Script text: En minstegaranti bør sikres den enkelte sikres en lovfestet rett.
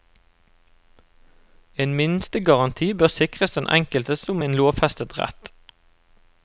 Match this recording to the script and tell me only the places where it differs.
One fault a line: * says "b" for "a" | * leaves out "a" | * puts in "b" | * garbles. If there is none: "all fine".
* says "som" for "sikres"